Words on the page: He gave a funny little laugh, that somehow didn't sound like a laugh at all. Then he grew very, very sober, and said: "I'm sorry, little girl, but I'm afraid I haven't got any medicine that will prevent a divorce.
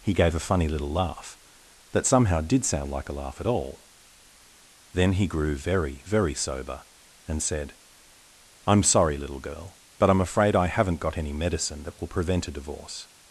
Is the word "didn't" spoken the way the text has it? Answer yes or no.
no